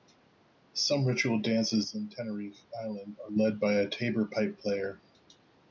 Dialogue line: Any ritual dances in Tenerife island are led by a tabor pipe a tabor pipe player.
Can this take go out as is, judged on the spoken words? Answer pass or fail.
fail